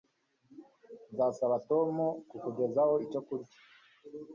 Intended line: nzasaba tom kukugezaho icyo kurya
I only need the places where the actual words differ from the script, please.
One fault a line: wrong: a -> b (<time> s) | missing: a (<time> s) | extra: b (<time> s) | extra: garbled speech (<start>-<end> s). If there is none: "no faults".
no faults